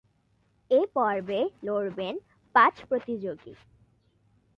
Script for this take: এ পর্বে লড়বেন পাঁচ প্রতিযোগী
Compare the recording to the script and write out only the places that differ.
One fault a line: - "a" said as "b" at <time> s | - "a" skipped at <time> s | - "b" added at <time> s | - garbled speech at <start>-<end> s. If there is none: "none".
none